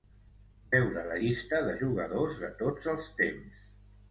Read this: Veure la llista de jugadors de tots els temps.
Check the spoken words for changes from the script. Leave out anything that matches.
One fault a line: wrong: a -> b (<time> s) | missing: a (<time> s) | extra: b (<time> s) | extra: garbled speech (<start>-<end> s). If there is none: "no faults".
no faults